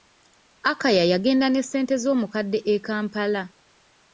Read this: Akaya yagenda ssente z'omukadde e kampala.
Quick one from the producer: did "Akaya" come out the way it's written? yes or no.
yes